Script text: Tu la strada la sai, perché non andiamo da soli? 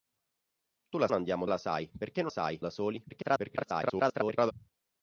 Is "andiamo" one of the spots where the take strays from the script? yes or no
yes